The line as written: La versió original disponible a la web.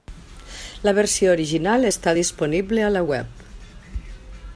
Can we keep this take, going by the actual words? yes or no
no